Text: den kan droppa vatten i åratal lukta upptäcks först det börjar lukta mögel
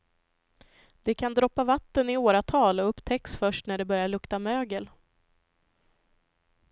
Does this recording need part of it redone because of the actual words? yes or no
yes